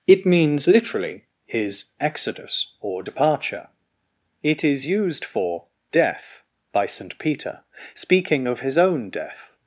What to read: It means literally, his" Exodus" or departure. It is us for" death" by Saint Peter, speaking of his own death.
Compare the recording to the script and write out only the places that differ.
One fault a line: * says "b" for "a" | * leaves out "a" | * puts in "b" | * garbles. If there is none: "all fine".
* says "used" for "us"